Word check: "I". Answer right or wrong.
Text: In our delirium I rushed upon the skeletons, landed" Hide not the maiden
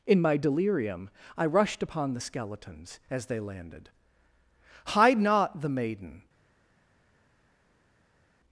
right